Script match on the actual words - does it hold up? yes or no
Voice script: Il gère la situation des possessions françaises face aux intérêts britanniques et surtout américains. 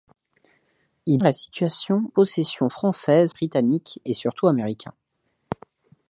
no